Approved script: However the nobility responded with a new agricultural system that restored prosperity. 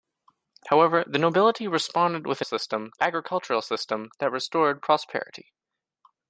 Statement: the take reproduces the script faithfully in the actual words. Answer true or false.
false